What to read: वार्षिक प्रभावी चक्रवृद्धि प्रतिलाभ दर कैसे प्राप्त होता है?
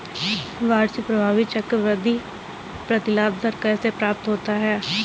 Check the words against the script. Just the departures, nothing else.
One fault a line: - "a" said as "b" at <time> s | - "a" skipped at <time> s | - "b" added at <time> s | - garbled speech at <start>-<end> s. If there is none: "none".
none